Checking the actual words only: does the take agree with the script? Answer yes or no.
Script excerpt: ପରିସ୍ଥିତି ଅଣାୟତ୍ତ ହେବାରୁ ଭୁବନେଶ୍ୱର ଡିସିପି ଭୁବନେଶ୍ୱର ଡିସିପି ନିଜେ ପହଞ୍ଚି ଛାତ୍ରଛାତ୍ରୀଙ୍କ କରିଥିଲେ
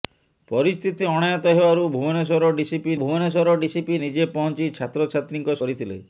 yes